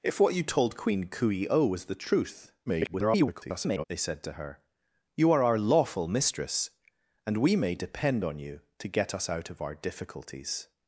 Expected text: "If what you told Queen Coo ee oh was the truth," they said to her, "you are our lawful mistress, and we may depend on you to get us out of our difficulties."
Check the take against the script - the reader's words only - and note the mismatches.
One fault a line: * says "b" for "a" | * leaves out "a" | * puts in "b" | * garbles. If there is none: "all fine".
* garbles